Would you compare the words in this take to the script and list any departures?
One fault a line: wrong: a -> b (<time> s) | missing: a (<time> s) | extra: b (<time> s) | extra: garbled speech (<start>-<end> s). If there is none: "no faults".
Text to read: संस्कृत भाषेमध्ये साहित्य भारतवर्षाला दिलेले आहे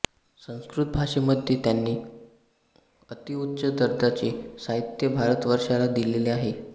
extra: त्यांनी अतिउच्च दर्जाचे (1.6 s)